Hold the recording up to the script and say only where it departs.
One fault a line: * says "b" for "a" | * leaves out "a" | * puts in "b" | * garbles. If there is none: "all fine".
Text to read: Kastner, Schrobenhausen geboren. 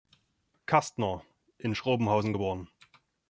* puts in "in"